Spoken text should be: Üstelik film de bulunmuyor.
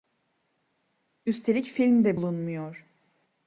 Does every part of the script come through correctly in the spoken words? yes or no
yes